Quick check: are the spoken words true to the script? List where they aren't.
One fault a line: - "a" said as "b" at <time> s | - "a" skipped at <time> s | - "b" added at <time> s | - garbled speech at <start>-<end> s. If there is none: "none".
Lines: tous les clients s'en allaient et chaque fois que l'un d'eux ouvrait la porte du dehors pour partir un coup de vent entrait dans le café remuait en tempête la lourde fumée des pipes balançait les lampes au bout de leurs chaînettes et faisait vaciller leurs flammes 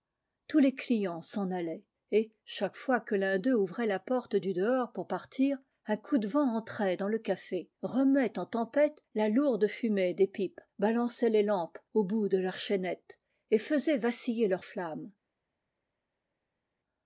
none